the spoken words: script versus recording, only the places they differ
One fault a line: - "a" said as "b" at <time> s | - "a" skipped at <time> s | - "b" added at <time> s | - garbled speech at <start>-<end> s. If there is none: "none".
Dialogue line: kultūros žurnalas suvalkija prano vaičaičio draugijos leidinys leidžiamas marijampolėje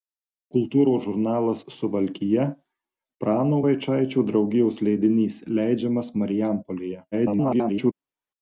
- garbled speech at 7.1-7.9 s